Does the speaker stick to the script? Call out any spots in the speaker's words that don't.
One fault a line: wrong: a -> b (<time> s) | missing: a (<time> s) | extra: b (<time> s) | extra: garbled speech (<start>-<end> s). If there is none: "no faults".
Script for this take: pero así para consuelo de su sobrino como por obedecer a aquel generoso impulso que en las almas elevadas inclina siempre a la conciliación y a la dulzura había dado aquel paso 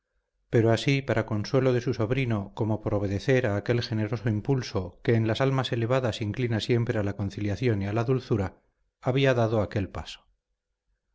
no faults